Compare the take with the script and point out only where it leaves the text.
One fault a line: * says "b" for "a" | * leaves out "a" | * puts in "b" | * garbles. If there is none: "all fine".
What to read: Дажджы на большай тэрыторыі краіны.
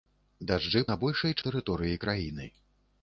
all fine